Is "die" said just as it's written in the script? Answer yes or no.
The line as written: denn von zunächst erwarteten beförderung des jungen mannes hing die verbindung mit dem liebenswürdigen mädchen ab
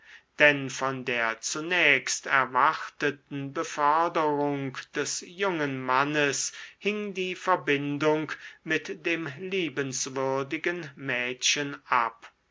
yes